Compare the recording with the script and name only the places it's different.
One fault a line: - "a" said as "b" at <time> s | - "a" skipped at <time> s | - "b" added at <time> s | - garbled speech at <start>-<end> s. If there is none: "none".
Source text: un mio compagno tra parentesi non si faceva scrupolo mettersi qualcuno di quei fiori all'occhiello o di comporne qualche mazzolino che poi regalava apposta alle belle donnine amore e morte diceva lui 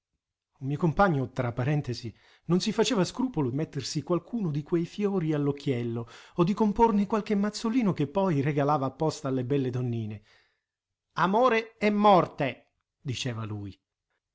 none